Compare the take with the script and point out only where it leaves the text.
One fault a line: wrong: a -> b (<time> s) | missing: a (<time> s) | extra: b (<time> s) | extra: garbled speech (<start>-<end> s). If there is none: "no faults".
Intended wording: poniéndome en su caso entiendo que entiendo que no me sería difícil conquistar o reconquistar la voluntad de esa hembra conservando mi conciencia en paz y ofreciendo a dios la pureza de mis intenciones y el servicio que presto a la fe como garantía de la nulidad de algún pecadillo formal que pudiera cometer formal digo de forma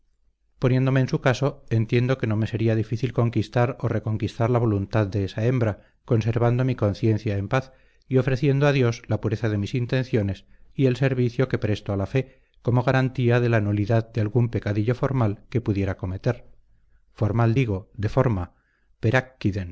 missing: entiendo que (2.3 s)